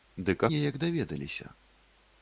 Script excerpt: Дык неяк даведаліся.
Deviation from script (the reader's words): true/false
false